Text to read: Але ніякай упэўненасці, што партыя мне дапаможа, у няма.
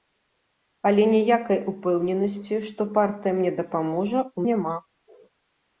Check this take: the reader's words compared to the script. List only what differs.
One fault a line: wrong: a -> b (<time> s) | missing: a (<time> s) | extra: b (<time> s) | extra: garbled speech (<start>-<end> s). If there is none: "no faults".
no faults